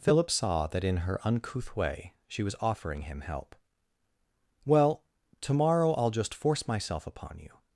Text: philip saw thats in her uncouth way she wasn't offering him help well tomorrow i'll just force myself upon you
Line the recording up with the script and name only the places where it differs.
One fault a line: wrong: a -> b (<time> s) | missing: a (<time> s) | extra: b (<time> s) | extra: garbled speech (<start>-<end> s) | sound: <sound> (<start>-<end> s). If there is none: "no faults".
wrong: thats -> that (0.7 s)
wrong: wasn't -> was (2.4 s)